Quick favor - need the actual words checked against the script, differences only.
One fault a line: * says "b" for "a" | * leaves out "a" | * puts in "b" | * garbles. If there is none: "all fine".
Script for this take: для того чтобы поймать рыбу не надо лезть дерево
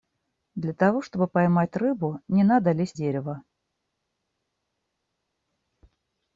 all fine